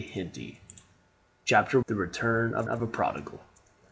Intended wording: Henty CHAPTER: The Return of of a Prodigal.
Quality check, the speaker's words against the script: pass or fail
pass